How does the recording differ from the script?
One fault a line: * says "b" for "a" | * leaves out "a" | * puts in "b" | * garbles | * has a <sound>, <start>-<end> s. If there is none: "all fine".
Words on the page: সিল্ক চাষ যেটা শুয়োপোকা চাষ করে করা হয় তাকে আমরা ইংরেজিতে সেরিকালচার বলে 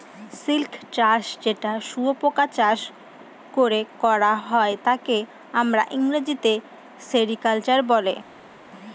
all fine